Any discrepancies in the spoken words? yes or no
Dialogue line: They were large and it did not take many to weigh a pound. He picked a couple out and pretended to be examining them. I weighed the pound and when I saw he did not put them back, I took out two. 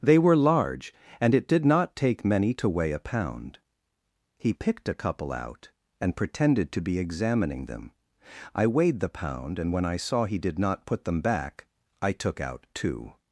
no